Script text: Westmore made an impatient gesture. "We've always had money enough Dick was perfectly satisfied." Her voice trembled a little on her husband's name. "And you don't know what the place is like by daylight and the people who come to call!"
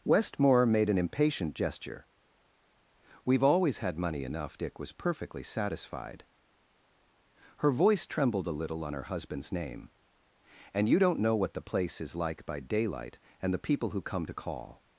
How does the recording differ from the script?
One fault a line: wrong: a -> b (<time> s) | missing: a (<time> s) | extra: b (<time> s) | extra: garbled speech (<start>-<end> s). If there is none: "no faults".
no faults